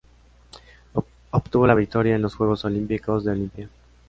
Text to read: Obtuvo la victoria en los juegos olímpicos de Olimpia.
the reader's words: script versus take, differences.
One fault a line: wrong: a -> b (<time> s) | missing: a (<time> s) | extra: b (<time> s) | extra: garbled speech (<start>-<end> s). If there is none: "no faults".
no faults